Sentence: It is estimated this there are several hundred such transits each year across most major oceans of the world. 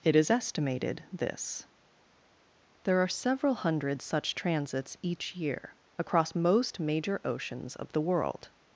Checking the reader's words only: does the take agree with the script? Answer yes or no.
yes